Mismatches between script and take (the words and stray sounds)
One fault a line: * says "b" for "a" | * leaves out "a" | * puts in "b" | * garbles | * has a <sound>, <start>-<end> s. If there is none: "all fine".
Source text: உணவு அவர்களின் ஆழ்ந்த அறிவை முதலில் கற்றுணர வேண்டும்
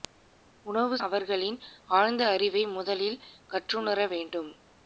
all fine